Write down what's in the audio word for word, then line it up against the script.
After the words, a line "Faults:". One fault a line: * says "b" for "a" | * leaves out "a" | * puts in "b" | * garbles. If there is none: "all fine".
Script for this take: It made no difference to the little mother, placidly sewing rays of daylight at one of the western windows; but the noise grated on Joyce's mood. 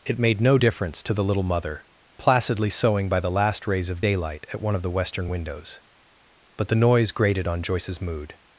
It made no difference to the little mother, placidly sewing by the last rays of daylight at one of the western windows; but the noise grated on Joyce's mood.
Faults:
* puts in "by the last"